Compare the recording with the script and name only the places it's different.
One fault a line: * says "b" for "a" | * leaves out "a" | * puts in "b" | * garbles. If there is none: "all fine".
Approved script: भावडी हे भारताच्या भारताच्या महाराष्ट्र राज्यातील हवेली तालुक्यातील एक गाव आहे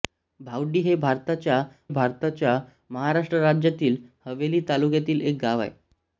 all fine